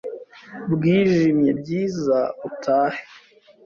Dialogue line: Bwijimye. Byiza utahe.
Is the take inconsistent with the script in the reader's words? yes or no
no